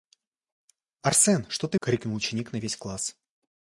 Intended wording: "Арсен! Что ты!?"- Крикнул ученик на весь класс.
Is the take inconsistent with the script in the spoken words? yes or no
no